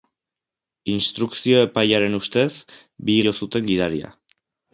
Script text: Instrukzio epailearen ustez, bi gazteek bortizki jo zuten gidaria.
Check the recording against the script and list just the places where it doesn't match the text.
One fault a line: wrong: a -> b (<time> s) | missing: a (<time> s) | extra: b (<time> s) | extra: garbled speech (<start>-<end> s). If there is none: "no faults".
missing: gazteek bortizki (3.2 s)